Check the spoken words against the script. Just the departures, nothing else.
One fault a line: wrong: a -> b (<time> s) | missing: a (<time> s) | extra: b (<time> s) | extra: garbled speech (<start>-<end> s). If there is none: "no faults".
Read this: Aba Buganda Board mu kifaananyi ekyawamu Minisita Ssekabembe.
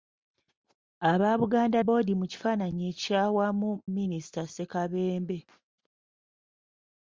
no faults